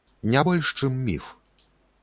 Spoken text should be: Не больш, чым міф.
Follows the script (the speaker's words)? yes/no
yes